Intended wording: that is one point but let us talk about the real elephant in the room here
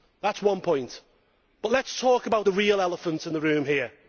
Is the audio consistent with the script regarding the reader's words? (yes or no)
yes